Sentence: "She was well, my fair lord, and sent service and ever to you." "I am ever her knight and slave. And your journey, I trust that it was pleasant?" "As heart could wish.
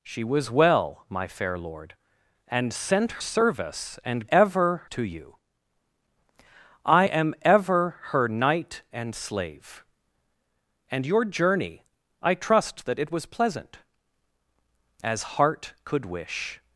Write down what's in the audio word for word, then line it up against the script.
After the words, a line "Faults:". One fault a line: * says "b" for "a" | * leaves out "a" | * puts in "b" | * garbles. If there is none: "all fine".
"She was well, my fair lord, and sent service and ever to you." "I am ever her knight and slave. And your journey, I trust that it was pleasant?" "As heart could wish.
Faults:
all fine